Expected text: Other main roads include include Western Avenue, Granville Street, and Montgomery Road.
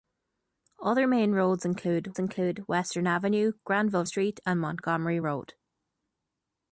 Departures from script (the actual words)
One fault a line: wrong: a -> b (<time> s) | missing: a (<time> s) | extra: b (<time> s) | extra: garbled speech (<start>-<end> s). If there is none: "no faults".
no faults